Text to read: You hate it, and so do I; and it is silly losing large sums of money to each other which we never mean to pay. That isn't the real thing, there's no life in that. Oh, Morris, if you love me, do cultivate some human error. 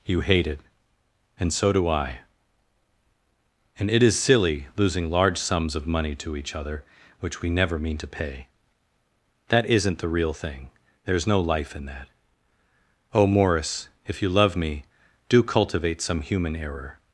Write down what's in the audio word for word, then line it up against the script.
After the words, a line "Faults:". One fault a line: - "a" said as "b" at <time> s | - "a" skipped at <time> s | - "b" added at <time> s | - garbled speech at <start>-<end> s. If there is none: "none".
You hate it, and so do I; and it is silly losing large sums of money to each other which we never mean to pay. That isn't the real thing, there's no life in that. Oh, Morris, if you love me, do cultivate some human error.
Faults:
none